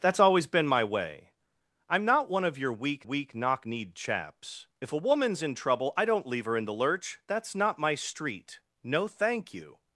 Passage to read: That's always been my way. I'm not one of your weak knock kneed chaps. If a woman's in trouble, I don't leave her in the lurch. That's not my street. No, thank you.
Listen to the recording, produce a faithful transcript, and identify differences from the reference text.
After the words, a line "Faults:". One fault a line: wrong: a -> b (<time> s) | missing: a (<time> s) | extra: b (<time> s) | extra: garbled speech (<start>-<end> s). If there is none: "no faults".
That's always been my way. I'm not one of your weak weak knock kneed chaps. If a woman's in trouble, I don't leave her in the lurch. That's not my street. No, thank you.
Faults:
extra: weak (3.0 s)